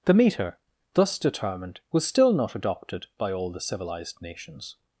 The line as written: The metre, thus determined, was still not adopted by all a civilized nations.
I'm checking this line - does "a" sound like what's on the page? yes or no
no